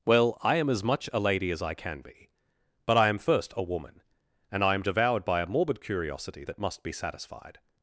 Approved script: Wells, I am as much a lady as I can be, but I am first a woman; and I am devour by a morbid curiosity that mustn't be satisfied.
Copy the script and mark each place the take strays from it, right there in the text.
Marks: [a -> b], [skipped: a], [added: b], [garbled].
[Wells, -> Well] I am as much a lady as I can be, but I am first a woman; and I am [devour -> devoured] by a morbid curiosity that [mustn't -> must] be satisfied.